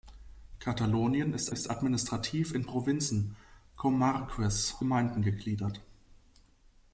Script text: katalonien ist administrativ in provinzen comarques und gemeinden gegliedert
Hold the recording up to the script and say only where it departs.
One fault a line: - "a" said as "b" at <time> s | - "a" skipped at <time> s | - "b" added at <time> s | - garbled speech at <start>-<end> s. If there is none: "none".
- "ist" added at 1.5 s
- "und" skipped at 4.7 s